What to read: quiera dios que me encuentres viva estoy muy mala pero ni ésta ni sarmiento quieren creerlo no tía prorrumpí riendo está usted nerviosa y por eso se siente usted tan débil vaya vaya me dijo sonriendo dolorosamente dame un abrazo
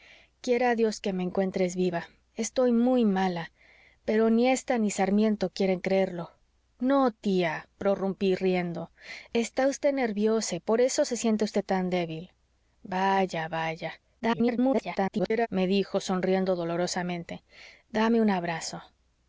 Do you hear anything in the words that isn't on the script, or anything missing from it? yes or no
yes